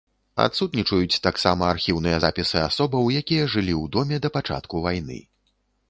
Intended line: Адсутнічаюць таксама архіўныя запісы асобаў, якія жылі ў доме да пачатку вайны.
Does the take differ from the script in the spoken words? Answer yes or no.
no